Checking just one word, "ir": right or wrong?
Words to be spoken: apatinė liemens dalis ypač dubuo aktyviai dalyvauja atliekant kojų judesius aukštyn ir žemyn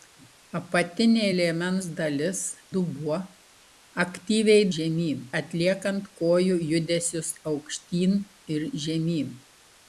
right